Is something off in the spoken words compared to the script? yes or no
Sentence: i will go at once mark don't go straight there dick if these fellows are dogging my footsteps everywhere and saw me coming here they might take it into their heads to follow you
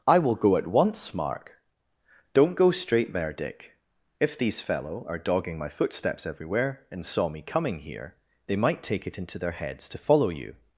yes